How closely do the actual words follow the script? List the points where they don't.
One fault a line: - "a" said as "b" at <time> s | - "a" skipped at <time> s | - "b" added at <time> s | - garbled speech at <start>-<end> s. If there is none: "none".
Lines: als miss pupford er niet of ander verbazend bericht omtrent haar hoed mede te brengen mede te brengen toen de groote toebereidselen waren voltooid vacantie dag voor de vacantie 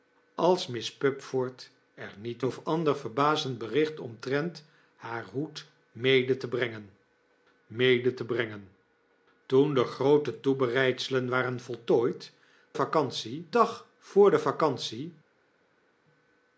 none